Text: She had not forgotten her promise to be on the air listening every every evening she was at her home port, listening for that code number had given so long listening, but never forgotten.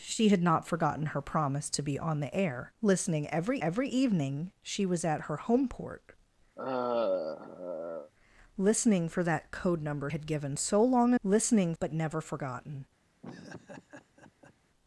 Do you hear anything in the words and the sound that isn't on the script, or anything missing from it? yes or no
yes